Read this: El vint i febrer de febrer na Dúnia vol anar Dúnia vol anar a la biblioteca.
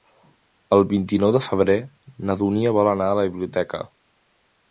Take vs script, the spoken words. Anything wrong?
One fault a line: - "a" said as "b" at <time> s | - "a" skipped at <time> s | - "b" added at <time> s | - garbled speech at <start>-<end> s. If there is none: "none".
- "febrer" said as "nou" at 1.2 s
- "Dúnia vol anar" skipped at 3.1 s